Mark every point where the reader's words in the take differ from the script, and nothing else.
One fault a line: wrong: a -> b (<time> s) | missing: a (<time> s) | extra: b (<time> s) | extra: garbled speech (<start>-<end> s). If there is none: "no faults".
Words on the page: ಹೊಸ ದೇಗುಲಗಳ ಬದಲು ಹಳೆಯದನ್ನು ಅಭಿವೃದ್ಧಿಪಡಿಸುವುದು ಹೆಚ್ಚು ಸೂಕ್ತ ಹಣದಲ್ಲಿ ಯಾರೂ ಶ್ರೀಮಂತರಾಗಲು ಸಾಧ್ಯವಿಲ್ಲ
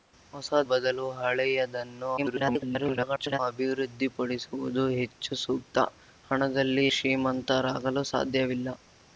missing: ದೇಗುಲಗಳ (0.5 s)
extra: garbled speech (2.2-3.4 s)
missing: ಯಾರೂ (6.9 s)